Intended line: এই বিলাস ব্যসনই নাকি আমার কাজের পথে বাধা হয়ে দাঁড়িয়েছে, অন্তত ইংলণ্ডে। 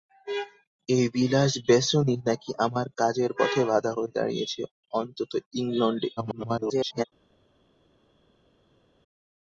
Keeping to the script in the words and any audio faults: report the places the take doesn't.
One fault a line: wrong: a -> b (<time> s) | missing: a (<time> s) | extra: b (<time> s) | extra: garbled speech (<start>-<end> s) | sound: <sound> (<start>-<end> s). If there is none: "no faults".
extra: garbled speech (6.2-7.0 s)